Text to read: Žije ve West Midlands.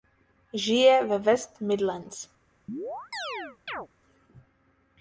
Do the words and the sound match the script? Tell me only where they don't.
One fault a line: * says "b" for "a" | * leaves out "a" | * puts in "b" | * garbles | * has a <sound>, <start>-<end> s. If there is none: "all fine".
* has a chirp, 2.7-3.9 s